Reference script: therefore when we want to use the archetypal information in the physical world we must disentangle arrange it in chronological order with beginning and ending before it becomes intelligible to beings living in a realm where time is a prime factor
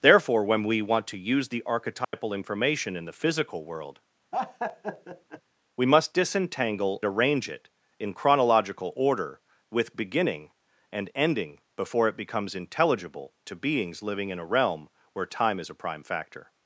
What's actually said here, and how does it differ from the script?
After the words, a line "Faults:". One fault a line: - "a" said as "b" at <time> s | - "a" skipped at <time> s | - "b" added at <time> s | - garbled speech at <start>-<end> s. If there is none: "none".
therefore when we want to use the archetypal information in the physical world we must disentangle arrange it in chronological order with beginning and ending before it becomes intelligible to beings living in a realm where time is a prime factor
Faults:
none